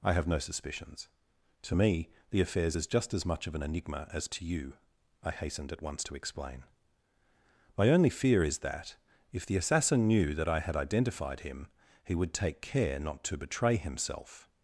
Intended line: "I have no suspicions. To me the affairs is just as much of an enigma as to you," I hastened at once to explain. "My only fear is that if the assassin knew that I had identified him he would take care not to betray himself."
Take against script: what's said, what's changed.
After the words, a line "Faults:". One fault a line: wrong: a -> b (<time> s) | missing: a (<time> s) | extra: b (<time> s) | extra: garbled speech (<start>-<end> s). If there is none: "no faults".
"I have no suspicions. To me the affairs is just as much of an enigma as to you," I hastened at once to explain. "My only fear is that if the assassin knew that I had identified him he would take care not to betray himself."
Faults:
no faults